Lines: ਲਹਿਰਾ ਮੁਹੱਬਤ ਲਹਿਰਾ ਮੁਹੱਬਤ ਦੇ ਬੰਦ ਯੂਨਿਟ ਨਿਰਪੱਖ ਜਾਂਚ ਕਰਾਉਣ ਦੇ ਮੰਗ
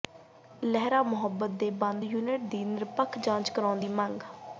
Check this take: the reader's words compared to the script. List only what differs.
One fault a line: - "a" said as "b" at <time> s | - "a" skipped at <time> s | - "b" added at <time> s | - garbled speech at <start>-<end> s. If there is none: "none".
- "ਲਹਿਰਾ ਮੁਹੱਬਤ" skipped at 1.5 s
- "ਦੀ" added at 2.5 s
- "ਦੇ" said as "ਦੀ" at 3.8 s